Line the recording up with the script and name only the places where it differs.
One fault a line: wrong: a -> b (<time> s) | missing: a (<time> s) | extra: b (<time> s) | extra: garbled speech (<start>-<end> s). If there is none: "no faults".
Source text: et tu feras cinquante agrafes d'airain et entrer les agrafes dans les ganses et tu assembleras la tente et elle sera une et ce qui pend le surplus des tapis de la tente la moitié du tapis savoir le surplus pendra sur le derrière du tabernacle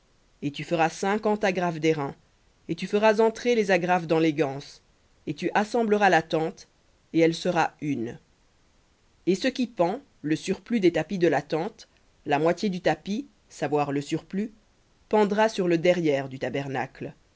extra: tu feras (2.8 s)